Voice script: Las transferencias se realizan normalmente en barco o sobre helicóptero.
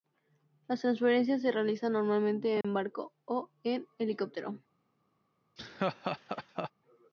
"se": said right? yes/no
yes